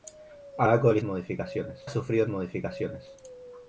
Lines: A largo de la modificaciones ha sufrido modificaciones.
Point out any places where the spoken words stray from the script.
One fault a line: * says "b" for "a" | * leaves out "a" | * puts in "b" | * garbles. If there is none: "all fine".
all fine